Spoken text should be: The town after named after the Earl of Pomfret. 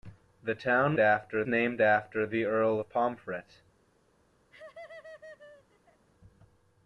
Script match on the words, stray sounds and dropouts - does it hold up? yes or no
no